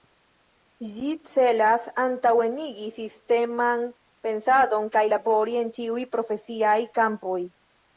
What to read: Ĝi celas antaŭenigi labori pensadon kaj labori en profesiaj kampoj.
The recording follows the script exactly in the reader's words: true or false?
false